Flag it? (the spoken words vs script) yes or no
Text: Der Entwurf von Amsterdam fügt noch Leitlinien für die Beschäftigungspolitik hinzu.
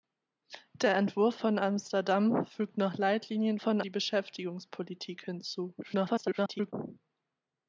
yes